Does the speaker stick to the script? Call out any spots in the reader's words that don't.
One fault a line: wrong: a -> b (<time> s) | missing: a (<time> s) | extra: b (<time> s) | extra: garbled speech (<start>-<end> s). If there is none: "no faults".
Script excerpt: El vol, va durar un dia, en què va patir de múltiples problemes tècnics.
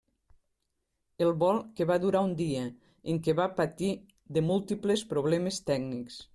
extra: que (1.8 s)